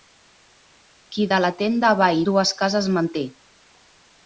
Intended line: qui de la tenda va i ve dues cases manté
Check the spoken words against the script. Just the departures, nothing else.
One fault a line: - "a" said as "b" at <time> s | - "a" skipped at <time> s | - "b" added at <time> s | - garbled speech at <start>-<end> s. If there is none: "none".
- "ve" skipped at 2.2 s